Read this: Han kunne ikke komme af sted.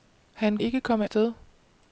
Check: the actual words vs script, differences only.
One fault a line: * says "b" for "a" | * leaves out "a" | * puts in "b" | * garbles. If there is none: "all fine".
* leaves out "kunne"
* leaves out "af"